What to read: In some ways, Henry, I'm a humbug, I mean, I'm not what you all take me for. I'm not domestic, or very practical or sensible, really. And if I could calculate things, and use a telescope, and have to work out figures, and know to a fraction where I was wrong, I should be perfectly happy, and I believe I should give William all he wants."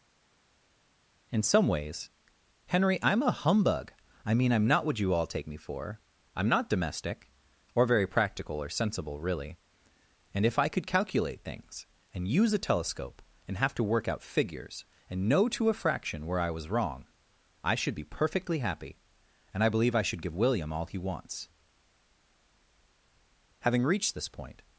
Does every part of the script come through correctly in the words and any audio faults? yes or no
no